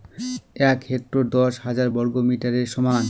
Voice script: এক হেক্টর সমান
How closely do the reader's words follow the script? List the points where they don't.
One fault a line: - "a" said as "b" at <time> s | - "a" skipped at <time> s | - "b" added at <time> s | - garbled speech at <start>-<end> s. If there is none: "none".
- "দশ হাজার বর্গমিটারের" added at 1.3 s